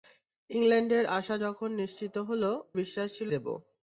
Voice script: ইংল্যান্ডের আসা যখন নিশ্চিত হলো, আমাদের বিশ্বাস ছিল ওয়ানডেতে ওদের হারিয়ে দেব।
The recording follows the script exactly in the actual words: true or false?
false